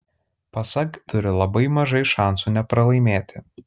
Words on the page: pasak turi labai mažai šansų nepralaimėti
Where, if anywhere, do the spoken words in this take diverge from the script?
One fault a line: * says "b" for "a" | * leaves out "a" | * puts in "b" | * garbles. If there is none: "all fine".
all fine